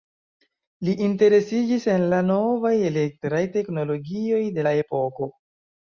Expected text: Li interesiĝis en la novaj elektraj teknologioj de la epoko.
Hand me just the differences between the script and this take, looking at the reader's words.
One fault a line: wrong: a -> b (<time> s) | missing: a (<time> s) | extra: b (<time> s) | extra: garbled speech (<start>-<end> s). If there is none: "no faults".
no faults